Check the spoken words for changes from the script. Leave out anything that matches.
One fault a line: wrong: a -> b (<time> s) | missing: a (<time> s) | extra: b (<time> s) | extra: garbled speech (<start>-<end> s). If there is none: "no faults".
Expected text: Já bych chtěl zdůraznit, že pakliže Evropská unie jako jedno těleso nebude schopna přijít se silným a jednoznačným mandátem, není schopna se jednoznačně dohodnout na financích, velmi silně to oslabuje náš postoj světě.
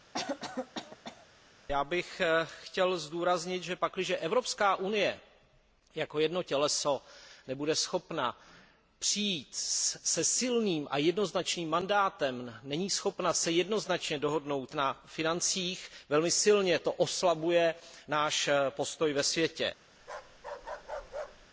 extra: ve (19.1 s)